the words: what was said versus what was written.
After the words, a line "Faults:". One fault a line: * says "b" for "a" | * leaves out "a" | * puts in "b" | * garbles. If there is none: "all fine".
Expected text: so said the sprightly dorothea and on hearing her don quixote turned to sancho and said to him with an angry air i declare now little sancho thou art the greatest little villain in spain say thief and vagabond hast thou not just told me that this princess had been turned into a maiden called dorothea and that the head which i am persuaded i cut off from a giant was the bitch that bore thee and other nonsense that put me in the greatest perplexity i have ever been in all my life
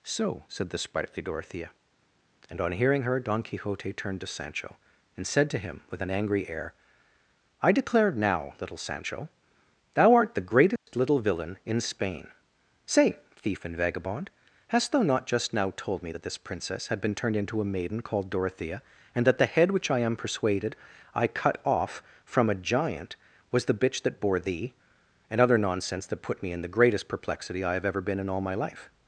so said the sprightly dorothea and on hearing her don quixote turned to sancho and said to him with an angry air i declare now little sancho thou art the greatest little villain in spain say thief and vagabond hast thou not just now told me that this princess had been turned into a maiden called dorothea and that the head which i am persuaded i cut off from a giant was the bitch that bore thee and other nonsense that put me in the greatest perplexity i have ever been in all my life
Faults:
* puts in "now"